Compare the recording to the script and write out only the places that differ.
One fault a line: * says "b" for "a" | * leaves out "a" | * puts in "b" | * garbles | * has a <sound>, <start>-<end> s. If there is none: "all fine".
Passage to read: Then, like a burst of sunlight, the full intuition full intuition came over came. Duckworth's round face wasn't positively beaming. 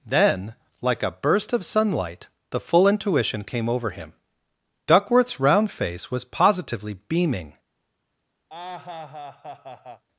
* leaves out "full intuition"
* says "him" for "came"
* says "was" for "wasn't"
* has a laugh, 8.5-10.0 s